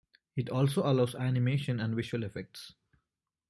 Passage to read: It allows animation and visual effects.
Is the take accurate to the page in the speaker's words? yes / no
no